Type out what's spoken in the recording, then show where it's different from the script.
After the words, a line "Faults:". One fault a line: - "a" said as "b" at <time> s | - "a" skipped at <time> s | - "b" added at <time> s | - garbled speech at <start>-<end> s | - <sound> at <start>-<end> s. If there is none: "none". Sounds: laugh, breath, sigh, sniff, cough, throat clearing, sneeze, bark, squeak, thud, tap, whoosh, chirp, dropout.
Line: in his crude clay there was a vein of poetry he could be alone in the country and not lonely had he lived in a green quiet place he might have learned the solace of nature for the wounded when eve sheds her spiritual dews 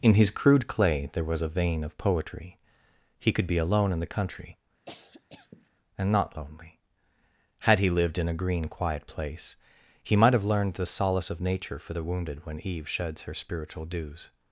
in his crude clay there was a vein of poetry he could be alone in the country and not lonely had he lived in a green quiet place he might have learned the solace of nature for the wounded when eve sheds her spiritual dews
Faults:
- cough at 4.8-5.7 s